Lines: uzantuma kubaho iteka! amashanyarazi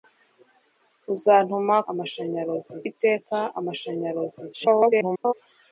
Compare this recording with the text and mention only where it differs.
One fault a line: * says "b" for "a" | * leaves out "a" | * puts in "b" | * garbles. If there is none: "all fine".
* says "amashanyarazi" for "kubaho"
* garbles